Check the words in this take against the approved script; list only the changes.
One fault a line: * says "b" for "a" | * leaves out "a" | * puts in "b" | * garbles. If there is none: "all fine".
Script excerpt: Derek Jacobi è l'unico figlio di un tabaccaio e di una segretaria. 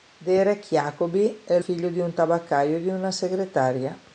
* leaves out "l'unico"